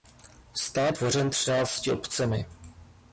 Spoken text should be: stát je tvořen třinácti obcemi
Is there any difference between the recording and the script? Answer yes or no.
yes